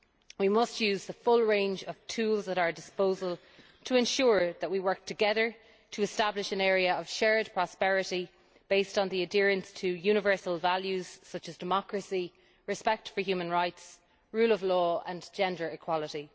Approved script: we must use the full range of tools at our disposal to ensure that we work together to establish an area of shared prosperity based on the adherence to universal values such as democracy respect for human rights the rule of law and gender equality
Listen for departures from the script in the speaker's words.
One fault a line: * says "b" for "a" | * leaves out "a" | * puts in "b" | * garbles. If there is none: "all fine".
all fine